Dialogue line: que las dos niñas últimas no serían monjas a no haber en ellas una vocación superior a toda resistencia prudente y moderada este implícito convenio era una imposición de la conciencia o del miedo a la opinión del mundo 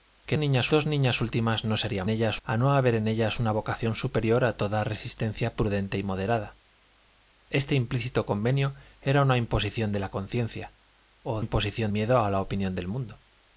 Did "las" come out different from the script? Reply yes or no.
yes